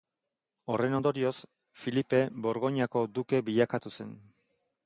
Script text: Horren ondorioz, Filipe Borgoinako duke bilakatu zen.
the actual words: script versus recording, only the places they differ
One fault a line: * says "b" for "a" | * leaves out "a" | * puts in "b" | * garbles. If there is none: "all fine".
all fine